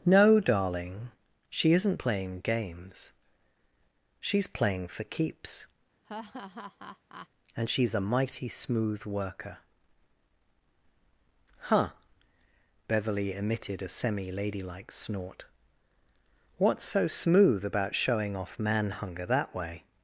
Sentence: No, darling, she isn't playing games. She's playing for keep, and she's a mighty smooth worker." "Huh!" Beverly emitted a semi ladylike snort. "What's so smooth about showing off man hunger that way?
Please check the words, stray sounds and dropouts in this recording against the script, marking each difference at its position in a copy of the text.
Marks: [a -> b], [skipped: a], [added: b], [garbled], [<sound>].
No, darling, she isn't playing games. She's playing for [keep, -> keeps] [laugh] and she's a mighty smooth worker." "Huh!" Beverly emitted a semi ladylike snort. "What's so smooth about showing off man hunger that way?